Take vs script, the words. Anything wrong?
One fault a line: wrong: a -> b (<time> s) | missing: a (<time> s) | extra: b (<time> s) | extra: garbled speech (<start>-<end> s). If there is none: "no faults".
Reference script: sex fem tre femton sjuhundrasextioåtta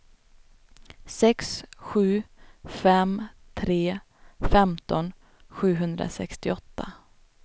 extra: sju (1.8 s)